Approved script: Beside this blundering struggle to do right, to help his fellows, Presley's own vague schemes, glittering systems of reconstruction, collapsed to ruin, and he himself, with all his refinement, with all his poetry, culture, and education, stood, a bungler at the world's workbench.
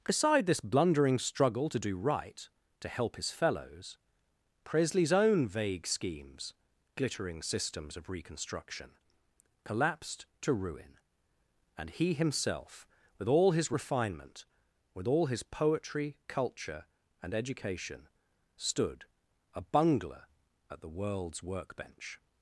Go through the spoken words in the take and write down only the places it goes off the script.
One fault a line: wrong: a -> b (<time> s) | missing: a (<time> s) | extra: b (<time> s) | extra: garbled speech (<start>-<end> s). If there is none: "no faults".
no faults